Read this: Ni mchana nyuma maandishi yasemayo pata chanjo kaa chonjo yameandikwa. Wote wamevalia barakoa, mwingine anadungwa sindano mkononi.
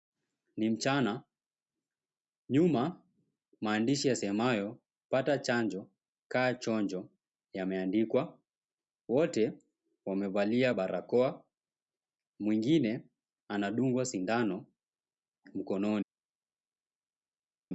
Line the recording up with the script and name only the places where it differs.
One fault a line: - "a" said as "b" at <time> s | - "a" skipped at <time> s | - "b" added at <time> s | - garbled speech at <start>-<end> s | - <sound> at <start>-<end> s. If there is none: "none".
none